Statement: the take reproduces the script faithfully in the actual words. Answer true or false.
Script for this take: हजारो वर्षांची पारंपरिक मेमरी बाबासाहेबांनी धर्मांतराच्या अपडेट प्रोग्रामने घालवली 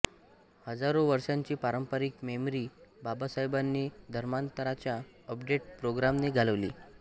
true